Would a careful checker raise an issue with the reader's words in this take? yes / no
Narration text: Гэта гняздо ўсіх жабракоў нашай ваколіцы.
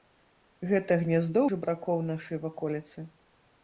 yes